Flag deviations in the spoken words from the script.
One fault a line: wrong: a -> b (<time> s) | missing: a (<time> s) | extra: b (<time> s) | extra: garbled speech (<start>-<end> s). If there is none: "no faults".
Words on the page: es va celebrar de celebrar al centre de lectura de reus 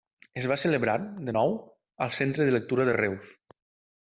wrong: celebrar -> nou (1.4 s)